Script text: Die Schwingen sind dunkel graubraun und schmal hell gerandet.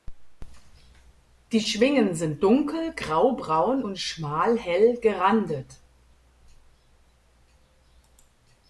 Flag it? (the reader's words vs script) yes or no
no